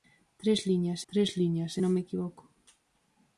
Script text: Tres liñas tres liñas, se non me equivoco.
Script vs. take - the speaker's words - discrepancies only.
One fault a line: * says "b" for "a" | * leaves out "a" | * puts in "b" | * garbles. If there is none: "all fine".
all fine